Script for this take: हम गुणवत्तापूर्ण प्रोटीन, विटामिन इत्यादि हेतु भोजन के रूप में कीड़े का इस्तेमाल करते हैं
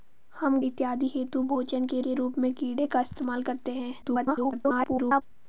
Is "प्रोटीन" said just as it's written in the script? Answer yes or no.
no